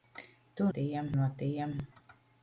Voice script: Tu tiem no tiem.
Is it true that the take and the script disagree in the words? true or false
false